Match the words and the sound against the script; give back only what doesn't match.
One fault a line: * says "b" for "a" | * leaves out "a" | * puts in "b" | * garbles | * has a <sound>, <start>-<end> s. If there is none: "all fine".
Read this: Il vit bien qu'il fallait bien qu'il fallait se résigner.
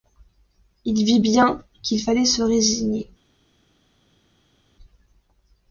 * leaves out "bien qu'il fallait"